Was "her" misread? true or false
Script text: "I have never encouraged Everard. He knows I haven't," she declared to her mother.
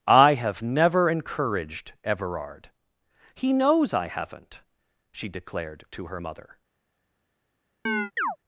false